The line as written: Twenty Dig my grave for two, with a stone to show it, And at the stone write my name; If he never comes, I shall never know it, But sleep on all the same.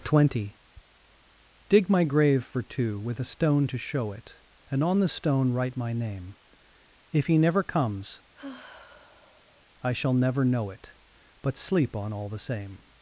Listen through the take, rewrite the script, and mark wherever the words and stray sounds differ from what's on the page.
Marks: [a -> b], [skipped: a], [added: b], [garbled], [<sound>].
Twenty Dig my grave for two, with a stone to show it, And [at -> on] the stone write my name; If he never comes, [sigh] I shall never know it, But sleep on all the same.